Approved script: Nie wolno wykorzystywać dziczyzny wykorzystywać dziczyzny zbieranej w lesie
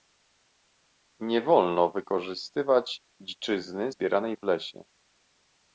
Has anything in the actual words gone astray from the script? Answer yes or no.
yes